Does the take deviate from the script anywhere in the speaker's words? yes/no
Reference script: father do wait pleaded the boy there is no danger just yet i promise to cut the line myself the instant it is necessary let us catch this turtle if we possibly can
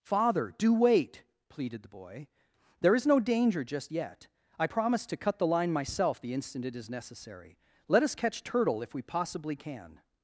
yes